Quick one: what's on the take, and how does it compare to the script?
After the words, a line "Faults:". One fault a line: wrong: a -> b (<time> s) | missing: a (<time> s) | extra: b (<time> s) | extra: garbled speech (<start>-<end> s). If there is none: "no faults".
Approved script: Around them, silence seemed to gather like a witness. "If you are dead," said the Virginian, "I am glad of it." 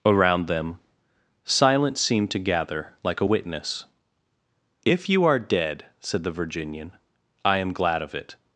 Around them, silence seemed to gather like a witness. "If you are dead," said the Virginian, "I am glad of it."
Faults:
no faults